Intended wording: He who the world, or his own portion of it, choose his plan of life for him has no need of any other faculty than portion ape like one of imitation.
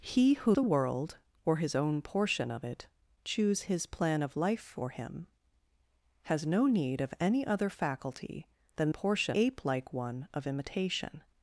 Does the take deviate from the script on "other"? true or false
false